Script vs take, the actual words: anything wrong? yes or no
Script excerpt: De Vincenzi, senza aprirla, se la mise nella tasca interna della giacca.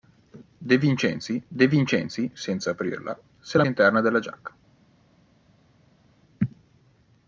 yes